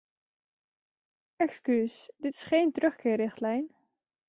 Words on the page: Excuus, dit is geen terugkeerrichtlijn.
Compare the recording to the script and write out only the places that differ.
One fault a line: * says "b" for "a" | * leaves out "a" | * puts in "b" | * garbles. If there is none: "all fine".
all fine